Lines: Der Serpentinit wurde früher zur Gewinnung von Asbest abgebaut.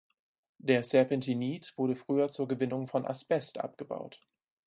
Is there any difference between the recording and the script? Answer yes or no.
no